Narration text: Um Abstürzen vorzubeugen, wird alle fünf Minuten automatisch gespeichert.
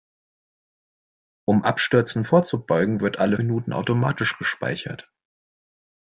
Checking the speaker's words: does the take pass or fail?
fail